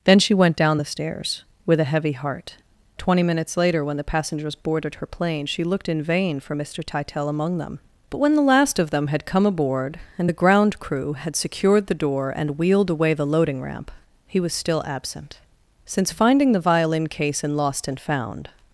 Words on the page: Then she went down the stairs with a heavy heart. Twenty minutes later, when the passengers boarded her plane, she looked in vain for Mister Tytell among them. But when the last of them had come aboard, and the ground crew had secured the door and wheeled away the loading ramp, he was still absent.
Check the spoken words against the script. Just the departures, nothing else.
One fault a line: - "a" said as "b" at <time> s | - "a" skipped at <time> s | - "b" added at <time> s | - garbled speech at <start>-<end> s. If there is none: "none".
- "Since finding the violin case in Lost and Found" added at 15.8 s